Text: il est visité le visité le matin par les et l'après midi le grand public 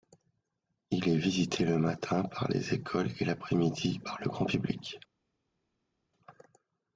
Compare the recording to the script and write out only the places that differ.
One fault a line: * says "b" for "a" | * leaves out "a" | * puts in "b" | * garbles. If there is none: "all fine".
* leaves out "visité le"
* puts in "écoles"
* puts in "par"